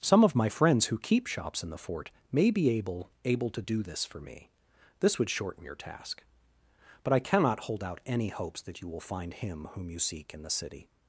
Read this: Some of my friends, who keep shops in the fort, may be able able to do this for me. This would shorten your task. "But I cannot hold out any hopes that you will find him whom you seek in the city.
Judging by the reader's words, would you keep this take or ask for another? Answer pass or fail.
pass